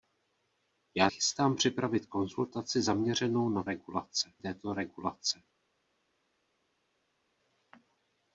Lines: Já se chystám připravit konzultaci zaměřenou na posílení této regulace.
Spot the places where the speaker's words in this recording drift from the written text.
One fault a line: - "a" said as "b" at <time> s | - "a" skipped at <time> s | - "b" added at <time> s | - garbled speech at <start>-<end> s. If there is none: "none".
- "se" skipped at 1.1 s
- "posílení" said as "regulace" at 3.6 s